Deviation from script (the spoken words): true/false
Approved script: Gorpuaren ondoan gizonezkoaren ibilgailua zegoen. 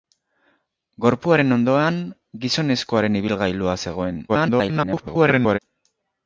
true